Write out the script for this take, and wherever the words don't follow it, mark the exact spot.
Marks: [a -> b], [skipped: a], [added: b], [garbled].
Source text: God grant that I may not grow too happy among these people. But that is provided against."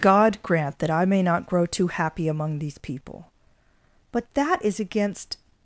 God grant that I may not grow too happy among these people. But that is [skipped: provided] against."